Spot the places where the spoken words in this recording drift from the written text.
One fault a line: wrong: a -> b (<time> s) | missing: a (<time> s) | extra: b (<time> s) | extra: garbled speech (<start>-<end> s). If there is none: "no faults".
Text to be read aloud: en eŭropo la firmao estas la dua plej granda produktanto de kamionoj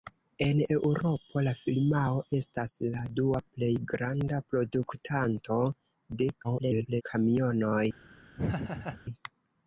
extra: garbled speech (6.4-7.0 s)